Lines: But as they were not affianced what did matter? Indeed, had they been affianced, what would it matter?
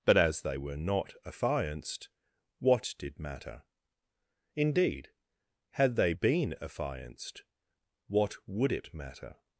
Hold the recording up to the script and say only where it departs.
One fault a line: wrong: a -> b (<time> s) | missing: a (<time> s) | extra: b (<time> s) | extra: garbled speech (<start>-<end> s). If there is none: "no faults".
no faults